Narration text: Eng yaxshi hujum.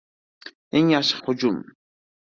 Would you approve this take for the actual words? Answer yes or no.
yes